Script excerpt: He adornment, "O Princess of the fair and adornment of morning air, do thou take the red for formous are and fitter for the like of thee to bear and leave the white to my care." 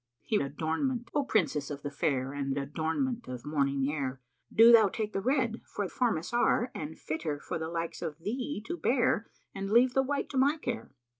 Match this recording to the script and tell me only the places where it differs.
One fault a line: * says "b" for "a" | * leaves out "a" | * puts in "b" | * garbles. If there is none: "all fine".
all fine